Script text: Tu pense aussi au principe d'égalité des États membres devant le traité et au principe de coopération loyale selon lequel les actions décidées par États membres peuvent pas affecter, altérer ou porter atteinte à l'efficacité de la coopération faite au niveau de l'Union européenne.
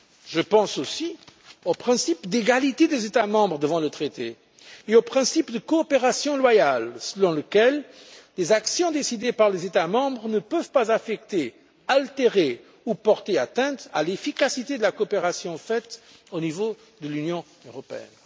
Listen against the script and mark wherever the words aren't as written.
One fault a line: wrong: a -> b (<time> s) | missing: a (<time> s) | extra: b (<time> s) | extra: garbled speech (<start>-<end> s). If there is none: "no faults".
wrong: Tu -> Je (0.3 s)
extra: les (9.5 s)
extra: ne (10.3 s)